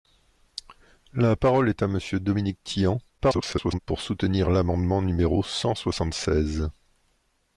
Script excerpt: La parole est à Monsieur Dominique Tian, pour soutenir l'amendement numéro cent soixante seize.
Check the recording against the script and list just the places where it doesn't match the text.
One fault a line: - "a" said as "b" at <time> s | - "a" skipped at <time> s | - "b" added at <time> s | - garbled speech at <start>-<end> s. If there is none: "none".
- garbled speech at 3.2-3.8 s